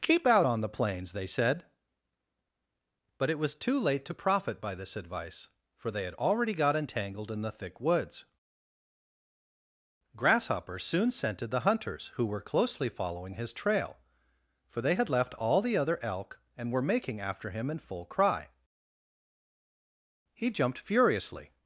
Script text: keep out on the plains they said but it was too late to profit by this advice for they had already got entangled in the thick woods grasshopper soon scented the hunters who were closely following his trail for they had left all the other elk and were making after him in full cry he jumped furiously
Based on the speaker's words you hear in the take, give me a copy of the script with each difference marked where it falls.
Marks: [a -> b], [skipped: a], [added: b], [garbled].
keep out on the plains they said but it was too late to profit by this advice for they had already got entangled in the thick woods grasshopper soon scented the hunters who were closely following his trail for they had left all the other elk and were making after him in full cry he jumped furiously